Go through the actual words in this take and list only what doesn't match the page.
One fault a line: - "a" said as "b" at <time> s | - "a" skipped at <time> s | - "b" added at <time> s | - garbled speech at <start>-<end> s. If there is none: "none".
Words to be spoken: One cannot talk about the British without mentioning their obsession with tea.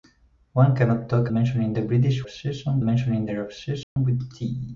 - "about" said as "mentioning" at 1.3 s
- "without" said as "obsession" at 2.2 s